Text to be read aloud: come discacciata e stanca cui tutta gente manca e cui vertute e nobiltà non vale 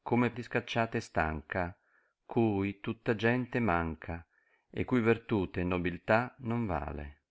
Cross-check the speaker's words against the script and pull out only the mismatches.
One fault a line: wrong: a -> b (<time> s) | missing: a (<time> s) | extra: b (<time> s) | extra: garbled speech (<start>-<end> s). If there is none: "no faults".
no faults